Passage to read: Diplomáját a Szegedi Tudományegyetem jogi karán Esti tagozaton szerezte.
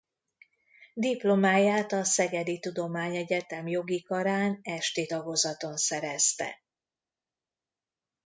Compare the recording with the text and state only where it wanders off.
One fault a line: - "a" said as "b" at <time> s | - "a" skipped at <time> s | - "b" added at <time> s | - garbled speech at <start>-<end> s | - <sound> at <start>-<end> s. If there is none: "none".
none